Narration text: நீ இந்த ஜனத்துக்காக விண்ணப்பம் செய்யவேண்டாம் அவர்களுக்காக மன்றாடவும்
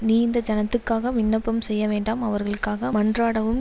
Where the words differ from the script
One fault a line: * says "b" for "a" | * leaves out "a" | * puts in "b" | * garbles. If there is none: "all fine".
all fine